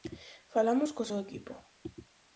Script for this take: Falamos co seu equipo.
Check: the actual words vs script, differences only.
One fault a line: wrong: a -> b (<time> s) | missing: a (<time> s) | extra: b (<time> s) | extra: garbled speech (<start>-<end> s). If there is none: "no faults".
no faults